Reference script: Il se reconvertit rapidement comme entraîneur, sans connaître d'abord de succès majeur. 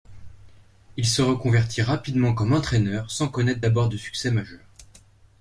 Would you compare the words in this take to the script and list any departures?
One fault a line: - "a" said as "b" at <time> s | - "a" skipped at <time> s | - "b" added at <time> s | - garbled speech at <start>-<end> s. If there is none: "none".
none